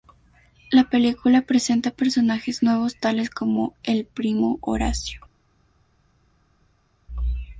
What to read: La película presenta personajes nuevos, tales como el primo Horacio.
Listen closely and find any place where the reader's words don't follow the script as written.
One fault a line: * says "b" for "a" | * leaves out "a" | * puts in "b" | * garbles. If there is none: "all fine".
all fine